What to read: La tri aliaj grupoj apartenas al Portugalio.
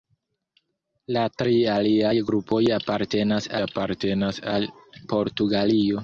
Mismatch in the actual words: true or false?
true